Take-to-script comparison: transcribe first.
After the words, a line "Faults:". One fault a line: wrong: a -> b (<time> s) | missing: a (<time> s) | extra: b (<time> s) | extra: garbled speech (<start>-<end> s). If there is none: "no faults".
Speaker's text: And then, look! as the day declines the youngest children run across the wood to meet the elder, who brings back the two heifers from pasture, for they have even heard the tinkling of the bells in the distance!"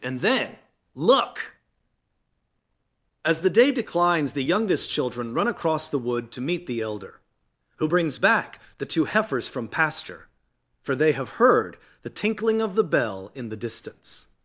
And then, look! as the day declines the youngest children run across the wood to meet the elder, who brings back the two heifers from pasture, for they have heard the tinkling of the bell in the distance!"
Faults:
missing: even (11.4 s)
wrong: bells -> bell (12.8 s)